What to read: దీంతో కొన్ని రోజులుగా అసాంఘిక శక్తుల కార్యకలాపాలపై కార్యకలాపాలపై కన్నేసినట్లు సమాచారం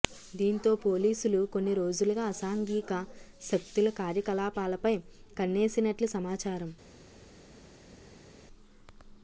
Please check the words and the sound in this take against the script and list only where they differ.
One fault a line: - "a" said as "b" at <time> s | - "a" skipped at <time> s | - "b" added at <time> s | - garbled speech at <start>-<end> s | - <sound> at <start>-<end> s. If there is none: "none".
- "పోలీసులు" added at 0.8 s
- "కార్యకలాపాలపై" skipped at 5.0 s